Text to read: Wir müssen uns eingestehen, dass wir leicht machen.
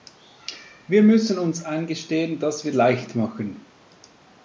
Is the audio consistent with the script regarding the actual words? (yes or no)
yes